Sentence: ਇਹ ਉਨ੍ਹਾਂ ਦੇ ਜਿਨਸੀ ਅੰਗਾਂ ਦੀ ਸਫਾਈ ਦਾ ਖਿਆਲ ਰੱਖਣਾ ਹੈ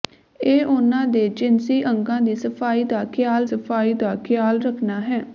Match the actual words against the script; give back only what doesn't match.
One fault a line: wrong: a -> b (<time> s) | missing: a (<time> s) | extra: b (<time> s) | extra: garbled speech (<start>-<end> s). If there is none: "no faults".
extra: ਸਫਾਈ ਦਾ ਖਿਆਲ (3.4 s)